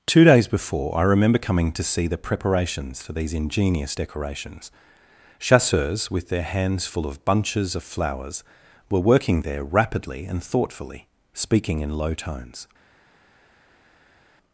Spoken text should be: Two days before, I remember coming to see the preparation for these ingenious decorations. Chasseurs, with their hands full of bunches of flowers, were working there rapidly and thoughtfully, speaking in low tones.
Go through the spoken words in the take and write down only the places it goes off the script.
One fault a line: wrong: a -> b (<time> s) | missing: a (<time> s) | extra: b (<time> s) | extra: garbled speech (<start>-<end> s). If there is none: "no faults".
wrong: preparation -> preparations (2.2 s)